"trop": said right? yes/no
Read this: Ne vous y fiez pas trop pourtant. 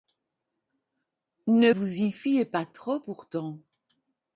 yes